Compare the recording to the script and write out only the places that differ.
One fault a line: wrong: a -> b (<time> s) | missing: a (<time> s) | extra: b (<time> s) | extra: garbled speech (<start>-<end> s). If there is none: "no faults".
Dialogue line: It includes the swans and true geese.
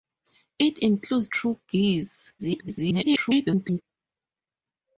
missing: the swans and (1.3 s)
extra: garbled speech (2.4-3.8 s)